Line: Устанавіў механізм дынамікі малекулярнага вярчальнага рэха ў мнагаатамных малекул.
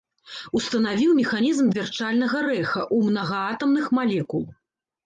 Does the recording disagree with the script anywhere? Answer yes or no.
yes